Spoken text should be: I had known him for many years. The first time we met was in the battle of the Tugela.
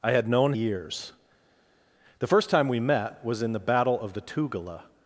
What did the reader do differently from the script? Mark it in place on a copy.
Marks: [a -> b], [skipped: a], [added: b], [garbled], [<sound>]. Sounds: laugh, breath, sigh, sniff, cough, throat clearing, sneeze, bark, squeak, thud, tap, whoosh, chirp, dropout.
I had known [skipped: him for many] years. The first time we met was in the battle of the Tugela.